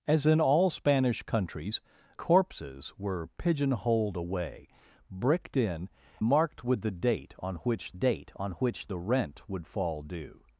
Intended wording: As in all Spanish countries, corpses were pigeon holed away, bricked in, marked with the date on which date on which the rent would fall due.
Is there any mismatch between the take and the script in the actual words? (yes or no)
no